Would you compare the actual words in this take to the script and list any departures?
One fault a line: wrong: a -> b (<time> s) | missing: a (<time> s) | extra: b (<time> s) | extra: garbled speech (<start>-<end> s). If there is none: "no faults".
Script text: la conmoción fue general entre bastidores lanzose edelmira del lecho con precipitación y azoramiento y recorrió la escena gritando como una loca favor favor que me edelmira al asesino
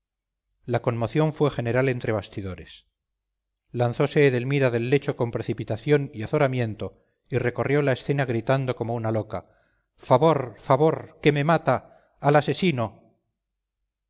wrong: edelmira -> mata (11.4 s)